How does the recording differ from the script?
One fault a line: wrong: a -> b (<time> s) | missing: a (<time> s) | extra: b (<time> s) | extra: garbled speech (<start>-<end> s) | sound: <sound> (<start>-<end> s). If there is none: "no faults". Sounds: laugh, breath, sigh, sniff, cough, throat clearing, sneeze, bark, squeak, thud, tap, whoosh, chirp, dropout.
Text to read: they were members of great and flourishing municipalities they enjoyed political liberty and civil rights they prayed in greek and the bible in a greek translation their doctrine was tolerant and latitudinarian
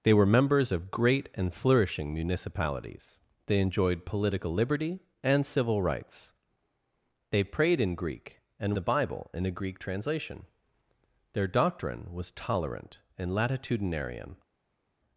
no faults